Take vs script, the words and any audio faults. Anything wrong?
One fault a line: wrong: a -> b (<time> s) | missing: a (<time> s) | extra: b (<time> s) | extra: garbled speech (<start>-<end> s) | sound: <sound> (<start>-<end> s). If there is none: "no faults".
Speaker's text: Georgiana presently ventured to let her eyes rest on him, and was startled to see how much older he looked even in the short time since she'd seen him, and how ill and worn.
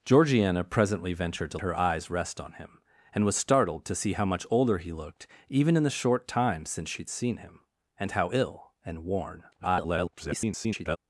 missing: let (1.6 s)
extra: garbled speech (9.5-11.0 s)